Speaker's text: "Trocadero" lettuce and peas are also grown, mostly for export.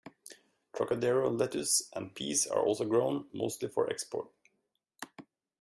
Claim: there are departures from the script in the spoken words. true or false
false